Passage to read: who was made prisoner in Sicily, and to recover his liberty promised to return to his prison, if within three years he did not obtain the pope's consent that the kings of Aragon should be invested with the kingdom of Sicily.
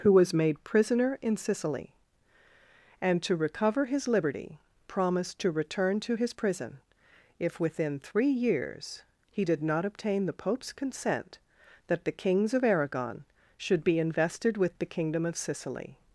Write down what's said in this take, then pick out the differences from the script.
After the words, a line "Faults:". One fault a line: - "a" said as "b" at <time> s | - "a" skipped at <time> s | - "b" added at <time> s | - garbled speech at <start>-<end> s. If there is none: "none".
who was made prisoner in Sicily, and to recover his liberty promised to return to his prison, if within three years he did not obtain the pope's consent that the kings of Aragon should be invested with the kingdom of Sicily.
Faults:
none